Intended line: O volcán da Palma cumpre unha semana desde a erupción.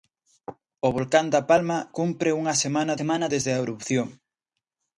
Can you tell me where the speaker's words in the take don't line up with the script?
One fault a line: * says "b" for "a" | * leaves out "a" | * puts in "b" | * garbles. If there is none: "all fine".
* puts in "semana"